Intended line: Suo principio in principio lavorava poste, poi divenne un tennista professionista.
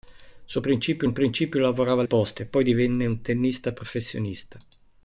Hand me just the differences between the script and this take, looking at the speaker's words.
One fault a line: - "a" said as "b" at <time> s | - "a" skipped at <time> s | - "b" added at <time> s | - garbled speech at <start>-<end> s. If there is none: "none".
none